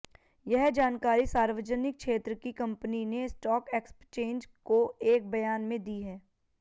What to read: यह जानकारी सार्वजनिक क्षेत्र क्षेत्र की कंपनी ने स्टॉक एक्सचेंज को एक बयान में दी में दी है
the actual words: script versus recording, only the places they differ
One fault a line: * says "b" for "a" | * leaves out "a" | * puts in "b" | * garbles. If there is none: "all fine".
* leaves out "क्षेत्र"
* leaves out "में दी"